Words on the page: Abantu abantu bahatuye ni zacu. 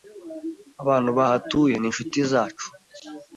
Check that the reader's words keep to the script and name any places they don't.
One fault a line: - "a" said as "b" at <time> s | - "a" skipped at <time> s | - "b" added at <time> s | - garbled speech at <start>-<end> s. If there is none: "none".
- "abantu" skipped at 1.1 s
- "inshuti" added at 1.9 s